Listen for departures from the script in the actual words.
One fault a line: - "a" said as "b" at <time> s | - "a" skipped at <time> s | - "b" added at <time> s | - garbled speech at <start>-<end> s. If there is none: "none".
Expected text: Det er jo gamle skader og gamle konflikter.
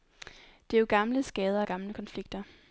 none